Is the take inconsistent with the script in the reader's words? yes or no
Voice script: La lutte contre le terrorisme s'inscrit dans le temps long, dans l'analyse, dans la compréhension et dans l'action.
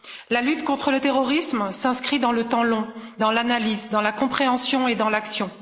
no